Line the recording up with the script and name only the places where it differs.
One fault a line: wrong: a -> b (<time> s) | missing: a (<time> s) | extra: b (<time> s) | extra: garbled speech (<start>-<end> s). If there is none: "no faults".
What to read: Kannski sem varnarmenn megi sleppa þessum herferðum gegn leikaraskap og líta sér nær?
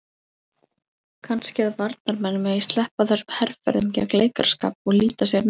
wrong: sem -> að (1.6 s)